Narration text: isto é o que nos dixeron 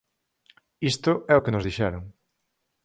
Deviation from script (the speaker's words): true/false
false